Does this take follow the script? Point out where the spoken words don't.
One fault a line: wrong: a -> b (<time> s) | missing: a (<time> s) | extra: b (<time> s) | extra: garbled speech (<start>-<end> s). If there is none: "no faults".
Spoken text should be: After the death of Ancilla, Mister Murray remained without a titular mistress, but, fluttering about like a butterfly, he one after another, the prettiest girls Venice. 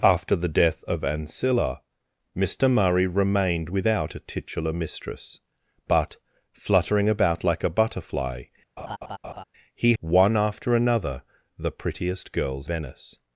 no faults